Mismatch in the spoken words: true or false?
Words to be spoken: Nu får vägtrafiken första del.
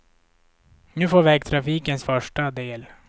false